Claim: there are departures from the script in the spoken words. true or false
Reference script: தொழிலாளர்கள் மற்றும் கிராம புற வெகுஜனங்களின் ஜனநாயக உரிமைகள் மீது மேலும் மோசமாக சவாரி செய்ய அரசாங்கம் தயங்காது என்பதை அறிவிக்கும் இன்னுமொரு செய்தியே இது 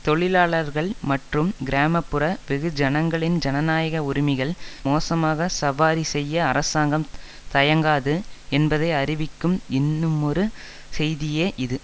true